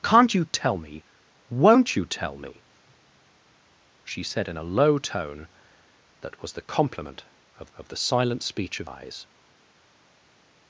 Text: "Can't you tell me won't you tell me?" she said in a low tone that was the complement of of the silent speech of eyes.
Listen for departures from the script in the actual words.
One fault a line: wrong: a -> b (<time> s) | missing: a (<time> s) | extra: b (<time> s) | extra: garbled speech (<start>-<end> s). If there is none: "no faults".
no faults